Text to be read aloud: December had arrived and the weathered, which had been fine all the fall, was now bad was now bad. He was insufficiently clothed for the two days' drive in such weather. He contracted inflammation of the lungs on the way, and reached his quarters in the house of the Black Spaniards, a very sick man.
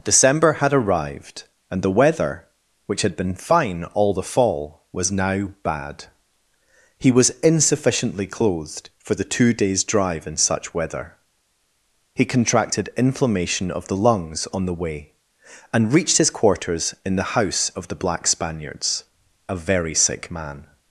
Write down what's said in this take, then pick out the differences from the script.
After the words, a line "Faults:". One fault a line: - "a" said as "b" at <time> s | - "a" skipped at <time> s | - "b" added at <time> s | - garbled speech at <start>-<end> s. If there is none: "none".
December had arrived and the weather, which had been fine all the fall, was now bad. He was insufficiently clothed for the two days' drive in such weather. He contracted inflammation of the lungs on the way, and reached his quarters in the house of the Black Spaniards, a very sick man.
Faults:
- "weathered" said as "weather" at 1.9 s
- "was now bad" skipped at 6.0 s